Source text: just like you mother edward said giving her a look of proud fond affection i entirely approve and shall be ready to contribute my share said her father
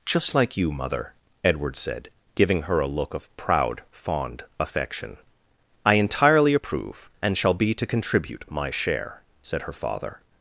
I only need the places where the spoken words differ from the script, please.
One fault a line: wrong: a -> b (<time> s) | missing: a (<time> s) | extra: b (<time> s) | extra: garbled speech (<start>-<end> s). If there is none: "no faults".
missing: ready (7.7 s)